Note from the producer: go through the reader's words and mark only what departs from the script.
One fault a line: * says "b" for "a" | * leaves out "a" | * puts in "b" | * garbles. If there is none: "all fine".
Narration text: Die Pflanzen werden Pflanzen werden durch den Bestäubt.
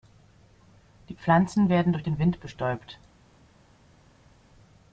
* leaves out "Pflanzen werden"
* puts in "Wind"